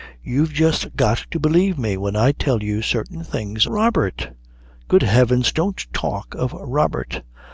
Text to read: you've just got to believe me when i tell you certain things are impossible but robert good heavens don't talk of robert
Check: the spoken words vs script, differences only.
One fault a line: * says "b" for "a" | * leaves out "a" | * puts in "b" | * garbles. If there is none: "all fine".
* leaves out "are impossible but"